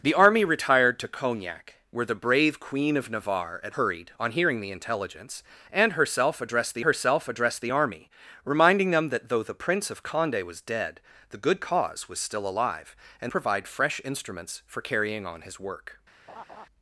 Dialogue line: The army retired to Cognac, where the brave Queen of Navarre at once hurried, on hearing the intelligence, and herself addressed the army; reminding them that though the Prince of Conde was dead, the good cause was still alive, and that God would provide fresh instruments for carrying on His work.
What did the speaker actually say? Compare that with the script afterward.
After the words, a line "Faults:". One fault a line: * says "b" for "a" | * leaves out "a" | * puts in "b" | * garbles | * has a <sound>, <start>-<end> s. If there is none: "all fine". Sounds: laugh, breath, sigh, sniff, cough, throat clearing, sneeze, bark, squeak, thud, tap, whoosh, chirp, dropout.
The army retired to Cognac, where the brave Queen of Navarre at hurried, on hearing the intelligence, and herself addressed the herself addressed the army; reminding them that though the Prince of Conde was dead, the good cause was still alive, and provide fresh instruments for carrying on His work.
Faults:
* leaves out "once"
* puts in "herself addressed the"
* leaves out "that God would"
* has a laugh, 16.3-16.7 s